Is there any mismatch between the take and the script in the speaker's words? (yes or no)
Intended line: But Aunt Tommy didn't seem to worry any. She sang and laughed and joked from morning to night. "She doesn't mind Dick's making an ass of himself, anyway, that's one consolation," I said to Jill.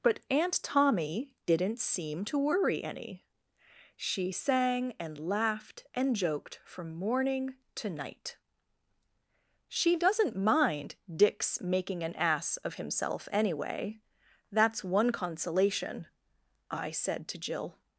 no